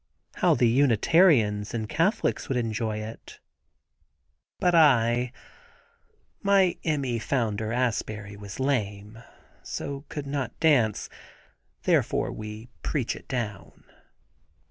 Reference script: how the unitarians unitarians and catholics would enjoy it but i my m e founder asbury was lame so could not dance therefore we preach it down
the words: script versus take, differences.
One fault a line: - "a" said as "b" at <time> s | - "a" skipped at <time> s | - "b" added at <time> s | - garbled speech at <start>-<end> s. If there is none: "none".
- "unitarians" skipped at 1.8 s